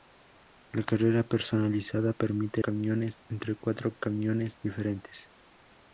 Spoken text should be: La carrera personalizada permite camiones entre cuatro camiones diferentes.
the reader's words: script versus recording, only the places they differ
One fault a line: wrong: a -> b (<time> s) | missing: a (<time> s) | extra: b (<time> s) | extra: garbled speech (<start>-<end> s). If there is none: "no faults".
no faults